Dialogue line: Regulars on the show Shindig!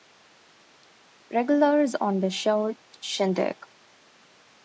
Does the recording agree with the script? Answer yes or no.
yes